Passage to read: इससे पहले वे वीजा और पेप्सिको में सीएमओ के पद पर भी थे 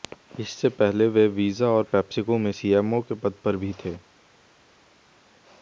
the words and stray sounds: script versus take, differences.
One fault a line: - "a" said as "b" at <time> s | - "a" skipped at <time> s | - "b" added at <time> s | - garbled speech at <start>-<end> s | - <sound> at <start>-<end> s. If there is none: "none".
none